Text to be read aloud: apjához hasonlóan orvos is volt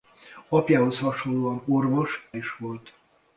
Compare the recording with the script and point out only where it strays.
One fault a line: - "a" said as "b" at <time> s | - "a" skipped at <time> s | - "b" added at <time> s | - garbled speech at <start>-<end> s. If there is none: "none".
none